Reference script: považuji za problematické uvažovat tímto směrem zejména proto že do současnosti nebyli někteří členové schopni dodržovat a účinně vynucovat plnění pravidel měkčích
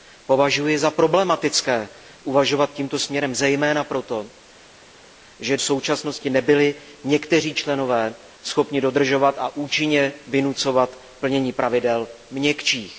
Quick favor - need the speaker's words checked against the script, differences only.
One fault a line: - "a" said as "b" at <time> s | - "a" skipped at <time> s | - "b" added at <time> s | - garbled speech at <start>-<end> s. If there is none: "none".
- "do" skipped at 5.6 s